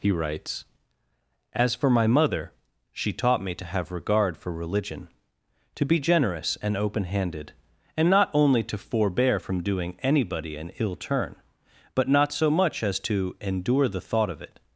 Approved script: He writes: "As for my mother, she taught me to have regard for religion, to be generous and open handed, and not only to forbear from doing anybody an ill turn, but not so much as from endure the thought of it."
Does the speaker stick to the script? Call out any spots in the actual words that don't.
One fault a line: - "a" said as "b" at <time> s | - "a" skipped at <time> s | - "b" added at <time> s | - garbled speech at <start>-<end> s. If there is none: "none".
- "from" said as "to" at 13.0 s